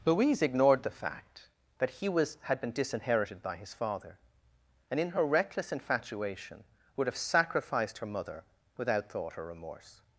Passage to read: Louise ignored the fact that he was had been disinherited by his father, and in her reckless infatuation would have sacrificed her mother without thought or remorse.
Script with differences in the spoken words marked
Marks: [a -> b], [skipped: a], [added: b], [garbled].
Louise ignored the fact that he was had been disinherited by his father, and in her reckless infatuation would have sacrificed her mother without thought or remorse.